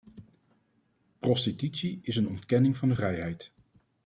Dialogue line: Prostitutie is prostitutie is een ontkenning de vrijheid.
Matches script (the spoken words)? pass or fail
fail